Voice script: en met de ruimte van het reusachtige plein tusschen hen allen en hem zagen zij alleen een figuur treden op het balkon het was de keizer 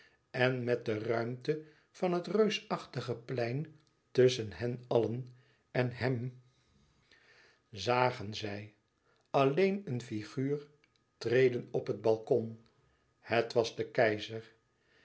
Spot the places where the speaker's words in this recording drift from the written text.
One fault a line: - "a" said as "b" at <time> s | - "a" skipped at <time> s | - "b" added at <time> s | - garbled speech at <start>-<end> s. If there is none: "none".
none